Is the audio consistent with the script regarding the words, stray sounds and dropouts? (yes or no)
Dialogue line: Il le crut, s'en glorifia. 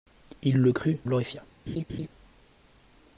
no